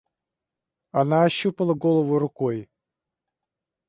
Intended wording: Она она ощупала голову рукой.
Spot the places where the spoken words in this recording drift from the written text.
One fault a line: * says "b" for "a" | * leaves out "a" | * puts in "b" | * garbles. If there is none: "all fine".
* leaves out "она"